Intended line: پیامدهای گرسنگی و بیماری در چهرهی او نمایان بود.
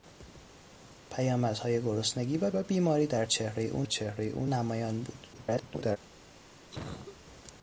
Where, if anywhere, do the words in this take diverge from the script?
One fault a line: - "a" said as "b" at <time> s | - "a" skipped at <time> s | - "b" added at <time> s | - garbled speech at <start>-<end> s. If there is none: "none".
- "و" added at 2.5 s
- "چهرهی او" added at 3.8 s
- garbled speech at 5.3-6.0 s